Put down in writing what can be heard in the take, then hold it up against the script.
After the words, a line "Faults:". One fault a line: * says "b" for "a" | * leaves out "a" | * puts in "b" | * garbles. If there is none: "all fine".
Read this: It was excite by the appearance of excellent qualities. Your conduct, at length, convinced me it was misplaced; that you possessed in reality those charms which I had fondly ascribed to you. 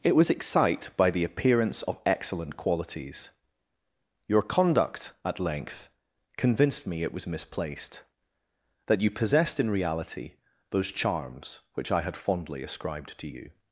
It was excite by the appearance of excellent qualities. Your conduct, at length, convinced me it was misplaced; that you possessed in reality those charms which I had fondly ascribed to you.
Faults:
all fine